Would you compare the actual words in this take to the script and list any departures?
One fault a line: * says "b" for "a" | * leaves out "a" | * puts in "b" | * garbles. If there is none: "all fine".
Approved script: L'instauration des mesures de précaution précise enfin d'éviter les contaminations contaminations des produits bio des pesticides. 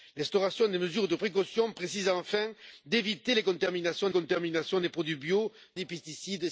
all fine